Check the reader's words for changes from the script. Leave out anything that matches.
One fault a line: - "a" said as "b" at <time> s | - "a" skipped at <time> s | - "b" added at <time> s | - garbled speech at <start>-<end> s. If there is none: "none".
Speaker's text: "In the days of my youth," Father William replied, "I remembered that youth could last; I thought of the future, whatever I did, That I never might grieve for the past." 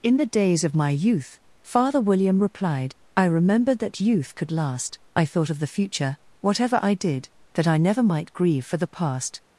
none